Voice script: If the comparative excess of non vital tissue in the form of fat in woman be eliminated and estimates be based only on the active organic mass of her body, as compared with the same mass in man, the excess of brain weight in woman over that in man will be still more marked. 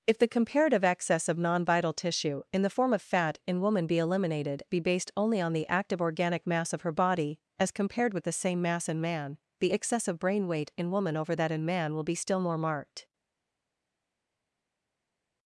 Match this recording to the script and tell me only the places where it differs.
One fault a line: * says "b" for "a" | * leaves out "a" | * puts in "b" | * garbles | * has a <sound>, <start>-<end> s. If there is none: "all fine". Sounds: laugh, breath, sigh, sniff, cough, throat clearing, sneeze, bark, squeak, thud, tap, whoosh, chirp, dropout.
* leaves out "and estimates"